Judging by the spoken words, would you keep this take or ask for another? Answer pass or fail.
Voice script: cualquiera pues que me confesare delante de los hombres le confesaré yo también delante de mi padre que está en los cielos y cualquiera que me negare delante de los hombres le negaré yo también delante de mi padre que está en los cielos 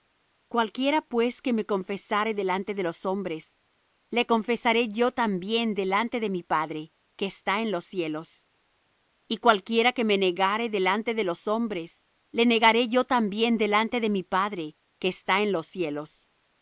pass